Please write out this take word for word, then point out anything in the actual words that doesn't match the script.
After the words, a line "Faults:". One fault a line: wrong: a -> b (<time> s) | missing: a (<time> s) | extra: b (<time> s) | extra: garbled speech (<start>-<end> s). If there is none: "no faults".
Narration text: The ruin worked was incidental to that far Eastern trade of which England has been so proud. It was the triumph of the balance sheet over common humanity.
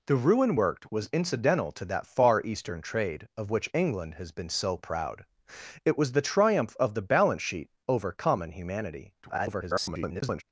The ruin worked was incidental to that far Eastern trade of which England has been so proud. It was the triumph of the balance sheet over common humanity. [garbled]
Faults:
extra: garbled speech (9.2-10.4 s)